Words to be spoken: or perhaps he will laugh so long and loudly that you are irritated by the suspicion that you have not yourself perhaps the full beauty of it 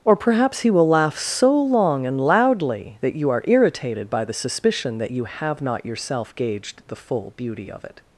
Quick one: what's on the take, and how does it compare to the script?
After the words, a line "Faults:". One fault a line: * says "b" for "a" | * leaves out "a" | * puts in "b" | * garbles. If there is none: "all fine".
or perhaps he will laugh so long and loudly that you are irritated by the suspicion that you have not yourself gauged the full beauty of it
Faults:
* says "gauged" for "perhaps"